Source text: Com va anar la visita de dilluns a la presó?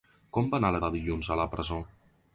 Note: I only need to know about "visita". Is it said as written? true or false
false